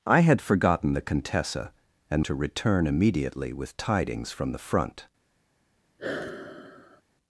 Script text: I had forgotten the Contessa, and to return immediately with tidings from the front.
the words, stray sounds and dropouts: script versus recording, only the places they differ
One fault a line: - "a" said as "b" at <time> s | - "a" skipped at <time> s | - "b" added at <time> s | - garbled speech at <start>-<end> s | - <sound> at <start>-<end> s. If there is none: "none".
- sigh at 6.0-7.0 s